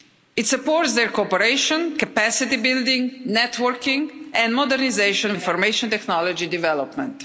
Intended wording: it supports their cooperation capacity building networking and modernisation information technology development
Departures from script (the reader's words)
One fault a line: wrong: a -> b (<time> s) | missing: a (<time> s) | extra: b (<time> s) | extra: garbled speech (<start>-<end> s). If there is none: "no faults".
no faults